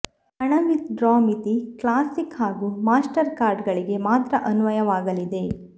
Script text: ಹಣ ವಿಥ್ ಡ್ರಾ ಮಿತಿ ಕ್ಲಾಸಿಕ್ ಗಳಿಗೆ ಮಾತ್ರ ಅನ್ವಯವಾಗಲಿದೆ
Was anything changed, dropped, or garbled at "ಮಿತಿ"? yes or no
no